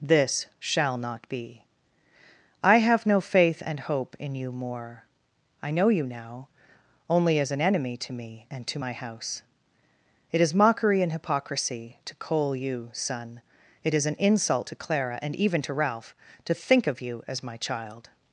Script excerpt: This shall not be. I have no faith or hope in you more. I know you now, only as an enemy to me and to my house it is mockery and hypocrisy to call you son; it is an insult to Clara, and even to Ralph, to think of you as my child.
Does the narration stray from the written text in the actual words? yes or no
yes